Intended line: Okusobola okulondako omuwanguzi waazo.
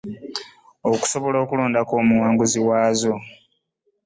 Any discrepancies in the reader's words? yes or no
no